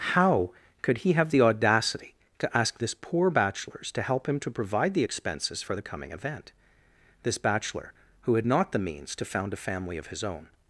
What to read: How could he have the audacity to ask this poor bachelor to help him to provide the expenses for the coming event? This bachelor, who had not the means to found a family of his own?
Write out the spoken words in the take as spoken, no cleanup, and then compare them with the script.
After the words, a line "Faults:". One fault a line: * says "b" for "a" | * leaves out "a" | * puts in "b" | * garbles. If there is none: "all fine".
How could he have the audacity to ask this poor bachelors to help him to provide the expenses for the coming event? This bachelor, who had not the means to found a family of his own?
Faults:
* says "bachelors" for "bachelor"